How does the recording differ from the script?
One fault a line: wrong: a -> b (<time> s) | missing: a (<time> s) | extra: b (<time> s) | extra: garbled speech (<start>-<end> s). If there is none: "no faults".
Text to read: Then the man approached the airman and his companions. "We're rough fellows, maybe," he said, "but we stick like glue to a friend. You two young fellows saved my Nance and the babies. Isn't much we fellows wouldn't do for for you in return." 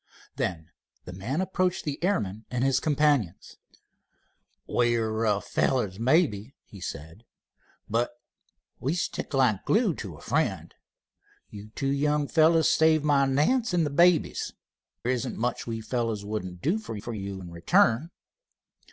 no faults